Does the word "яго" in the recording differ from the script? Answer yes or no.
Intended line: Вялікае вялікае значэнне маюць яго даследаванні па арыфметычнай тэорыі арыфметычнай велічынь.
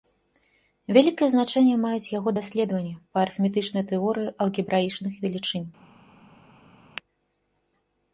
no